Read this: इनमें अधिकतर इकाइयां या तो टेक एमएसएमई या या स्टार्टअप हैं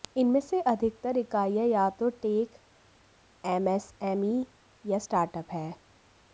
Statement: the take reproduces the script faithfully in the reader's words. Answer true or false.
false